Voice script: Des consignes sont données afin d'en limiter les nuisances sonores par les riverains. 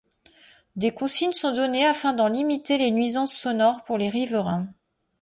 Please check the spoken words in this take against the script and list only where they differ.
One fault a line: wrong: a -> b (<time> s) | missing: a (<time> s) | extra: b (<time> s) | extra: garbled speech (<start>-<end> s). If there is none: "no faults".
wrong: par -> pour (3.8 s)